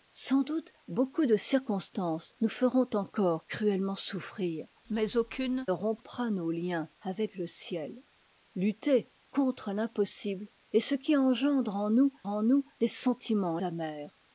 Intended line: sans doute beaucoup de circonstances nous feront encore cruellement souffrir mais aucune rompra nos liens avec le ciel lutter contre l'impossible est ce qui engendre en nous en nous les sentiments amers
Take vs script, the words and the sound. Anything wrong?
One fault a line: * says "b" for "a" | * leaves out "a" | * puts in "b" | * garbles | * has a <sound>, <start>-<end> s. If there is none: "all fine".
all fine